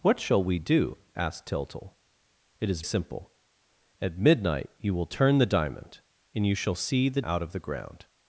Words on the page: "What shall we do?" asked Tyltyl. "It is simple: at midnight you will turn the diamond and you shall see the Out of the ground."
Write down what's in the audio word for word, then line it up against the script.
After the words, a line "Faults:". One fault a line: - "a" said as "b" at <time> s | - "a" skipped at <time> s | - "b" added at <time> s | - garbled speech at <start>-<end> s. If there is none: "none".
"What shall we do?" asked Tyltyl. "It is simple: at midnight you will turn the diamond and you shall see the Out of the ground."
Faults:
none